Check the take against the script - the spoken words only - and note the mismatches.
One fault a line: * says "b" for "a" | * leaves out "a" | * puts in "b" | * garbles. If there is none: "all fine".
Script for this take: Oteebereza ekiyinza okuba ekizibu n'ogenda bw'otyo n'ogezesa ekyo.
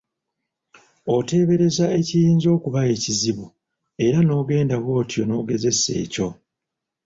* puts in "era"